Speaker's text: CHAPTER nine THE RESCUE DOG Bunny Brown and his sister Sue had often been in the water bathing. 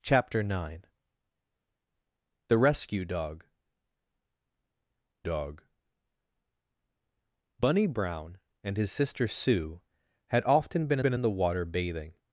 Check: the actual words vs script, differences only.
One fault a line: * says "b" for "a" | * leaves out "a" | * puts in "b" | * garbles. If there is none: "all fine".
* puts in "DOG"
* puts in "been"